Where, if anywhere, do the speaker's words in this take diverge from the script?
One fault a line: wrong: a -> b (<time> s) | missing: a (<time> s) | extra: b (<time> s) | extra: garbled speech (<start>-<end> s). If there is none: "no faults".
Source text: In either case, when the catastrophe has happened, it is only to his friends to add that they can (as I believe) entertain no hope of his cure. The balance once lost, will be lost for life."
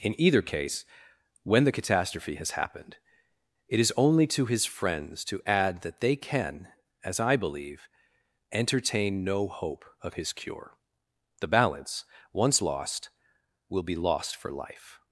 no faults